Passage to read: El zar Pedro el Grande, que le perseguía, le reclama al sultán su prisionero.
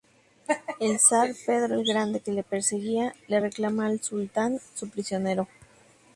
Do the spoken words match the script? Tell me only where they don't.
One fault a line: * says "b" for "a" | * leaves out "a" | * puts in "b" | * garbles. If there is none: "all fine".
all fine